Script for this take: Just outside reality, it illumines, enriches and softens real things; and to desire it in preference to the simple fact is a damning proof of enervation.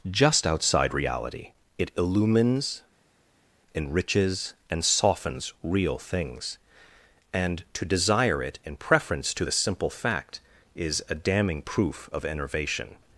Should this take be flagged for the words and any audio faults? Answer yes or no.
no